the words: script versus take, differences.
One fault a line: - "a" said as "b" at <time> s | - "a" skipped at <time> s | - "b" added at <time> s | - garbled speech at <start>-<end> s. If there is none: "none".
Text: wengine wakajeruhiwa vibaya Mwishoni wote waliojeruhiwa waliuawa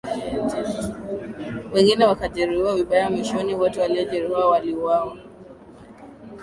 none